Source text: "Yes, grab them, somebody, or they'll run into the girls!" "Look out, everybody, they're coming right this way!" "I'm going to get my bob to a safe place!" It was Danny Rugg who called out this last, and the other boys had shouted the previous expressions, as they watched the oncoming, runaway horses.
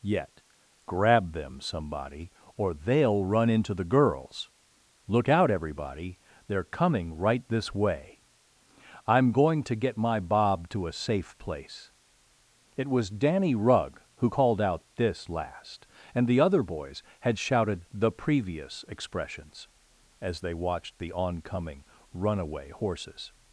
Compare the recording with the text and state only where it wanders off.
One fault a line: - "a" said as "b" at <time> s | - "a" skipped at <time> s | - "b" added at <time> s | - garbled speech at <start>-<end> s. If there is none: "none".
- "Yes" said as "Yet" at 0.0 s